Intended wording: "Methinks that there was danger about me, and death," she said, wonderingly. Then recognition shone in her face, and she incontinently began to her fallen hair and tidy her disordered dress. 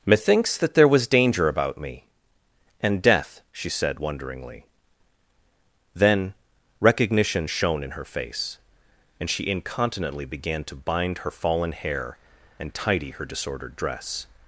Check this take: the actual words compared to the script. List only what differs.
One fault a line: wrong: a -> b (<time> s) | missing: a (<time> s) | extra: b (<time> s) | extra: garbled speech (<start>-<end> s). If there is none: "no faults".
extra: bind (10.8 s)